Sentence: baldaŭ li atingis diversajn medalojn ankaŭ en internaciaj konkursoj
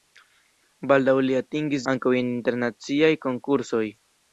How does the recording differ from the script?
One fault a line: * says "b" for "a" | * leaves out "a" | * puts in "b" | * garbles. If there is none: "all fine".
* leaves out "diversajn medalojn"